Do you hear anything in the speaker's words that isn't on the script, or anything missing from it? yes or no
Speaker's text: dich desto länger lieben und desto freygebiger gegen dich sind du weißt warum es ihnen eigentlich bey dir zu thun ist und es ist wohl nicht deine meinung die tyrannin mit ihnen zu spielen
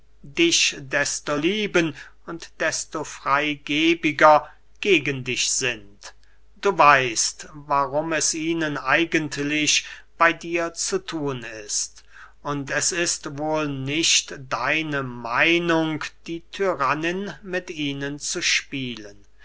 yes